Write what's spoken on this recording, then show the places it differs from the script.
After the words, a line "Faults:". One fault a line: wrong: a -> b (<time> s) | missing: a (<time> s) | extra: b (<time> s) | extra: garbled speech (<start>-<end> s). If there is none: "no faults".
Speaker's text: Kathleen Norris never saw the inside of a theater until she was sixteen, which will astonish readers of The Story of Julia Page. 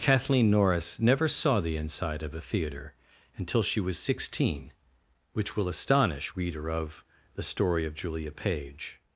Kathleen Norris never saw the inside of a theater until she was sixteen, which will astonish reader of The Story of Julia Page.
Faults:
wrong: readers -> reader (6.3 s)